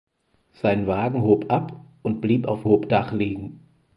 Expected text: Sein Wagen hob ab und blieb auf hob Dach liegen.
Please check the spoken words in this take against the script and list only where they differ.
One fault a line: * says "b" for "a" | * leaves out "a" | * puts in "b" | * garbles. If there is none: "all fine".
all fine